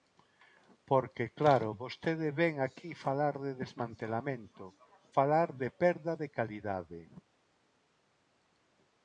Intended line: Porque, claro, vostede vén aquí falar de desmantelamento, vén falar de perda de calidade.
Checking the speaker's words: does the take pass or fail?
fail